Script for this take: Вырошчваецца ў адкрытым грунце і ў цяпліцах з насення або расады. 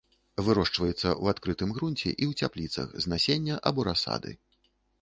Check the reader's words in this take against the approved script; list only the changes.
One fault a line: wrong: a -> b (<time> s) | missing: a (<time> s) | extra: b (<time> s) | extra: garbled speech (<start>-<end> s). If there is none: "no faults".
no faults